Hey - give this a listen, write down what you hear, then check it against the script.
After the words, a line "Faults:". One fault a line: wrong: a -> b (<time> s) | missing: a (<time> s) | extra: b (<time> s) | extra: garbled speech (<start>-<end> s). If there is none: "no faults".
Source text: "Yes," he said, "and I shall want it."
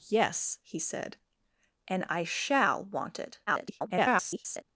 "Yes," he said, "and I shall want it." [garbled]
Faults:
extra: garbled speech (3.5-4.6 s)